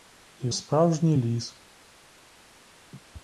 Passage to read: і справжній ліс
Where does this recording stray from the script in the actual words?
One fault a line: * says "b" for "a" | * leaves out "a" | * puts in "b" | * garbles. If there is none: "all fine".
all fine